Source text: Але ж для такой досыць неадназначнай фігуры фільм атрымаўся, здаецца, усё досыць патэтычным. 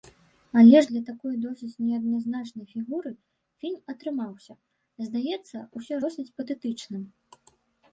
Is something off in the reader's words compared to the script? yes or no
no